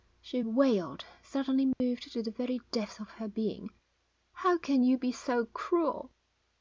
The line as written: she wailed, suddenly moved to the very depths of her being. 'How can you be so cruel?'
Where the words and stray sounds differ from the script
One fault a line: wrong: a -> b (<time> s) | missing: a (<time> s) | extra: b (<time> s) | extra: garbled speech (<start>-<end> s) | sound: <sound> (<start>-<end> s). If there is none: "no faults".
sound: dropout (1.7-1.8 s)